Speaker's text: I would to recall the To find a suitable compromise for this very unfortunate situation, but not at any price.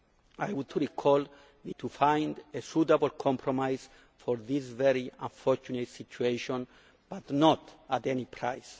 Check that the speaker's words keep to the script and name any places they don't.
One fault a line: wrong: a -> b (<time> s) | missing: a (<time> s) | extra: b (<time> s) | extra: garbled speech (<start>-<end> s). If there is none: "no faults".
no faults